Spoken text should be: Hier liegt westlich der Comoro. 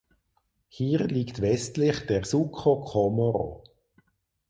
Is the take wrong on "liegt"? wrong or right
right